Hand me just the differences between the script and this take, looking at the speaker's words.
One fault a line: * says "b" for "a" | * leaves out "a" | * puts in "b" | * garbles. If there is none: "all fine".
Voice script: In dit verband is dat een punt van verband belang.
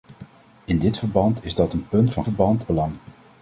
all fine